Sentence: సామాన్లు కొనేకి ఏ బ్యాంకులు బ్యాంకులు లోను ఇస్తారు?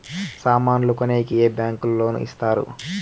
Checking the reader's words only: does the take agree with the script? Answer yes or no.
no